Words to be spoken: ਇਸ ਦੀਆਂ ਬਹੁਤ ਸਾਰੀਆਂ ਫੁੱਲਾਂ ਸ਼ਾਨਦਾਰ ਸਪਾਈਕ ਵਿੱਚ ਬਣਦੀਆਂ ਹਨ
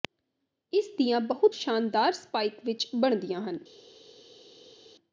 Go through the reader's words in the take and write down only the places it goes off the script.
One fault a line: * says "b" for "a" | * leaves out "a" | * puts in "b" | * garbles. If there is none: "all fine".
* leaves out "ਸਾਰੀਆਂ ਫੁੱਲਾਂ"